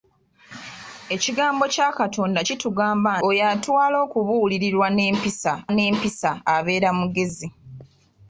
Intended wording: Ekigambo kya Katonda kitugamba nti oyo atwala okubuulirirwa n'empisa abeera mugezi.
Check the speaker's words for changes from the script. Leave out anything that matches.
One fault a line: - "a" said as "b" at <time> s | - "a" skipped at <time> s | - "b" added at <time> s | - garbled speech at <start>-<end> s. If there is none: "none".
- "nti" skipped at 3.1 s
- "n'empisa" added at 5.7 s